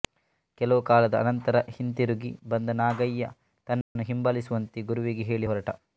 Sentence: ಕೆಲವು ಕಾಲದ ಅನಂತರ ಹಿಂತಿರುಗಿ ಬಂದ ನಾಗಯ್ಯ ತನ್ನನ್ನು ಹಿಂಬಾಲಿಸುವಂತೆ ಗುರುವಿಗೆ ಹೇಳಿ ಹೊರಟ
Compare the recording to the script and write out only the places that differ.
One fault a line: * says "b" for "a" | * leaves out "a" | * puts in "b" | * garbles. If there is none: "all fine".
all fine